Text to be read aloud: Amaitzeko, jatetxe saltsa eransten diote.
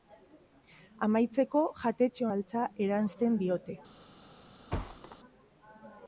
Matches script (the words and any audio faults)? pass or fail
fail